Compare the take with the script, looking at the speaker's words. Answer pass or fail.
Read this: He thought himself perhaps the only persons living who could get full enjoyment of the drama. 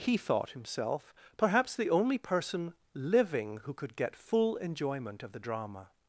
fail